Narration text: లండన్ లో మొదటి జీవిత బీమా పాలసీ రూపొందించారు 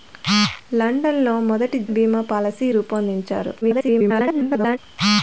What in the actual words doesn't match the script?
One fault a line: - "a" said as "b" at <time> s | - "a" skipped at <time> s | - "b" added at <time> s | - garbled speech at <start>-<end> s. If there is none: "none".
- "జీవిత" skipped at 1.8 s
- garbled speech at 3.6-4.8 s